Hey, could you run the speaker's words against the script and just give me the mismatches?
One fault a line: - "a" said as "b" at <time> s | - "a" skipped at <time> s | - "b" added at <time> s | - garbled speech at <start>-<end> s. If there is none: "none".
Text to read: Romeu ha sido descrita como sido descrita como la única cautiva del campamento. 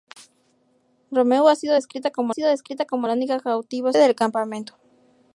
none